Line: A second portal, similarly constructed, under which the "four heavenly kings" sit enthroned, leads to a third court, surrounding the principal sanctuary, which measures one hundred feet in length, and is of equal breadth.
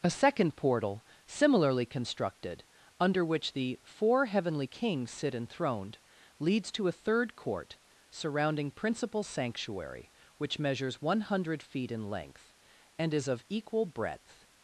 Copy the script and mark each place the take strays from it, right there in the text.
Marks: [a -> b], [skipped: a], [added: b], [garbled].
A second portal, similarly constructed, under which the "four heavenly kings" sit enthroned, leads to a third court, surrounding [skipped: the] principal sanctuary, which measures one hundred feet in length, and is of equal breadth.